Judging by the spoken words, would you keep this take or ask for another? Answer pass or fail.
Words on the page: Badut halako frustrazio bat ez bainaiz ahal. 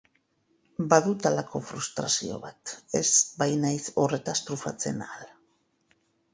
fail